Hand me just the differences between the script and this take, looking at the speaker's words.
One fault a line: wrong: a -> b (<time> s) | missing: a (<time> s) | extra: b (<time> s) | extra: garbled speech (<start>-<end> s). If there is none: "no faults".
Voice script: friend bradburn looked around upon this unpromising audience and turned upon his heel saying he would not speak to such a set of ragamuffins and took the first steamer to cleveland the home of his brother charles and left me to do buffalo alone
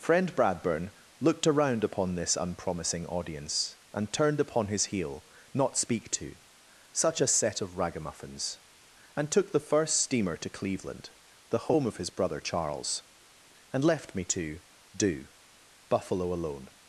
missing: saying he would (5.3 s)